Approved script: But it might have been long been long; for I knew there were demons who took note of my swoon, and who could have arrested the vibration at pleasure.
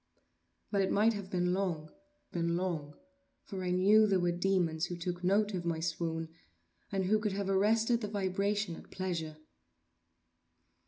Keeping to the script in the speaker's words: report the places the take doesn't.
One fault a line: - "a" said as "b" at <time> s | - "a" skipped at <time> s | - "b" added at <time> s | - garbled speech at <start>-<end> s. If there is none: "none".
none